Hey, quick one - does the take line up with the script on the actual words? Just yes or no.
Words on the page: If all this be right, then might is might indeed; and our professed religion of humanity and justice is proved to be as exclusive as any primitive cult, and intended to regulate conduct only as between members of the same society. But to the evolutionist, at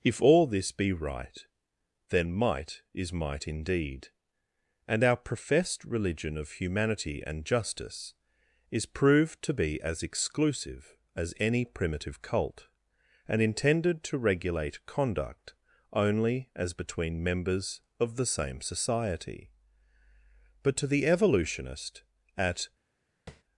yes